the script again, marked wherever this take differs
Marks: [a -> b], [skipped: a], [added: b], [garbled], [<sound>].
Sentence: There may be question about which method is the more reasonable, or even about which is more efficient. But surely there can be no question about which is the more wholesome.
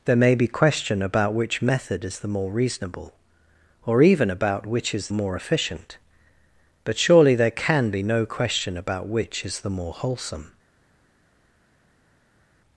There may be question about which method is the more reasonable, or even about which is more efficient. But surely there can be no question about which is the more wholesome.